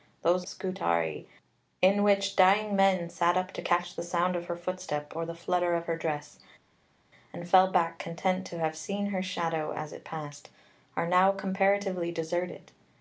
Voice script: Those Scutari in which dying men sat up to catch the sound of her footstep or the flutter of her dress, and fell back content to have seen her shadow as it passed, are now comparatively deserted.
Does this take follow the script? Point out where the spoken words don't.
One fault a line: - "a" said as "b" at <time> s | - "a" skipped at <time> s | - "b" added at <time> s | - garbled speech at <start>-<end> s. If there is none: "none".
none